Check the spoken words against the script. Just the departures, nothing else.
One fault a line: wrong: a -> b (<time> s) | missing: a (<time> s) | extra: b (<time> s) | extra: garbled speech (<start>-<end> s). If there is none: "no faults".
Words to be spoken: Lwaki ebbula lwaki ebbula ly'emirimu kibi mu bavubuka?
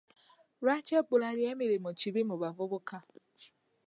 missing: lwaki ebbula (1.3 s)